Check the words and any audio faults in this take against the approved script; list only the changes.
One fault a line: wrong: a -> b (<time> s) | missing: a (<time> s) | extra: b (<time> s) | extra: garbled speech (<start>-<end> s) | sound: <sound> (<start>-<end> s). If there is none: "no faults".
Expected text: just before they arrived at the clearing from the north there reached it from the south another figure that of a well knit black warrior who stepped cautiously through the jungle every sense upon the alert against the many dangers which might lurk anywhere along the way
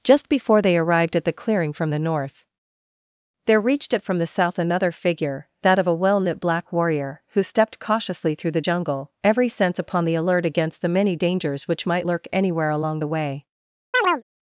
sound: chirp (13.9-14.2 s)